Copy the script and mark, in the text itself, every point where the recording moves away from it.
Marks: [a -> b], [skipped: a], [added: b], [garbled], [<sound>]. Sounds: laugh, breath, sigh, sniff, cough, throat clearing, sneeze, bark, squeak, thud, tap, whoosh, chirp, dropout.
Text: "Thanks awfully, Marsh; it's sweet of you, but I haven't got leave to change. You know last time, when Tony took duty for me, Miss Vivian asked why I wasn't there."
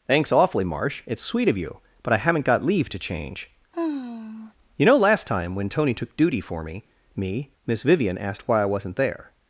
"Thanks awfully, Marsh; it's sweet of you, but I haven't got leave to change. [sigh] You know last time, when Tony took duty for me, [added: me] Miss Vivian asked why I wasn't there."